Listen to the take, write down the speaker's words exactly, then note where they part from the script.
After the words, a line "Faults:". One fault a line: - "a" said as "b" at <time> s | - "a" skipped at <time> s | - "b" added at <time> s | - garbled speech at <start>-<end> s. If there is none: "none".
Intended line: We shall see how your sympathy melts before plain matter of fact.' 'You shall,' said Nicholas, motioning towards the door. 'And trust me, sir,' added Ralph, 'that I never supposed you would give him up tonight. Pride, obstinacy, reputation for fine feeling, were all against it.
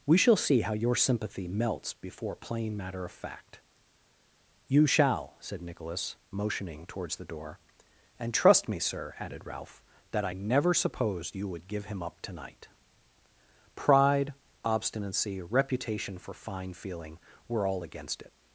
We shall see how your sympathy melts before plain matter of fact.' 'You shall,' said Nicholas, motioning towards the door. 'And trust me, sir,' added Ralph, 'that I never supposed you would give him up tonight. Pride, obstinacy, reputation for fine feeling, were all against it.
Faults:
none